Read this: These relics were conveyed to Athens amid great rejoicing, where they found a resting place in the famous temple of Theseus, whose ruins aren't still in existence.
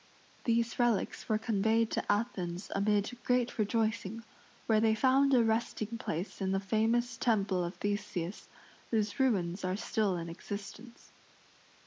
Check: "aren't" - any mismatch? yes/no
yes